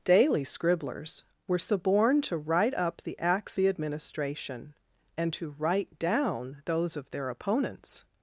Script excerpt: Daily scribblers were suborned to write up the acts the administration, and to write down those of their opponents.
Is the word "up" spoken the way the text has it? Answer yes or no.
yes